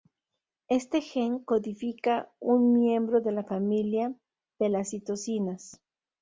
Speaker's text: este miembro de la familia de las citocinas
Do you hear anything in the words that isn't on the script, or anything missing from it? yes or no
yes